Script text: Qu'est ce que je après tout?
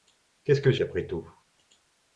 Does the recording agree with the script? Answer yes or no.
yes